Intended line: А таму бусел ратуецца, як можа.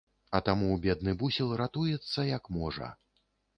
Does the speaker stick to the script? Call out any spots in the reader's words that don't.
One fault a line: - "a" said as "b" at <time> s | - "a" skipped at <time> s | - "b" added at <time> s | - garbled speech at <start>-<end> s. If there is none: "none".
- "бедны" added at 0.9 s